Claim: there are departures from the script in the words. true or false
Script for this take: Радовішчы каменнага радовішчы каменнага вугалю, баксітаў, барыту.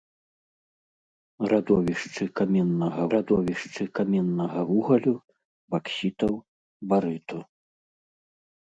false